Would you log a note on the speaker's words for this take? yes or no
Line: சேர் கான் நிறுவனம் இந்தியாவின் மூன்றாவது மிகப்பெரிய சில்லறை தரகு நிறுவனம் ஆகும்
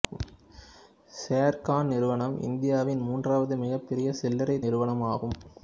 yes